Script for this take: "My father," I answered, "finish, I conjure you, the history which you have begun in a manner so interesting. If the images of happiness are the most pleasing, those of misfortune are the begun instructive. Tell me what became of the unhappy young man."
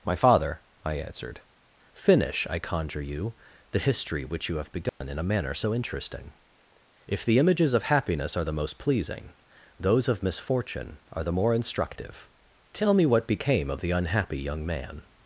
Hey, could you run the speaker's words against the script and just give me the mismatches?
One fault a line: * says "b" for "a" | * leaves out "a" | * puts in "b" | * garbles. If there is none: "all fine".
* says "more" for "begun"